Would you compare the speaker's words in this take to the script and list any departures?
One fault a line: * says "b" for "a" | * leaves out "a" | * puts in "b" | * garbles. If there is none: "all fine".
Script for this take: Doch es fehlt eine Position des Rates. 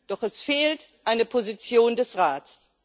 all fine